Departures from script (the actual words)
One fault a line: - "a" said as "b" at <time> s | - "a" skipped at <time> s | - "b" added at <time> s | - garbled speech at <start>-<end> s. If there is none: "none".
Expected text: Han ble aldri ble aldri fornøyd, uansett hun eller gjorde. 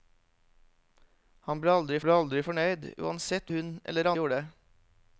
none